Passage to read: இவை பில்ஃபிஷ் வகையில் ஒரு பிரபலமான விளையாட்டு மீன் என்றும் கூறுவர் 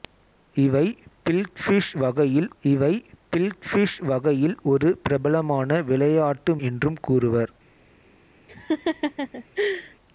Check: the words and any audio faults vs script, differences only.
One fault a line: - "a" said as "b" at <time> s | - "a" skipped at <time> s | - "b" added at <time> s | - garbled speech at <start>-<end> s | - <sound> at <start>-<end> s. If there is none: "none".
- "இவை பில்ஃபிஷ் வகையில்" added at 2.6 s
- "மீன்" skipped at 6.5 s
- laugh at 8.5-10.0 s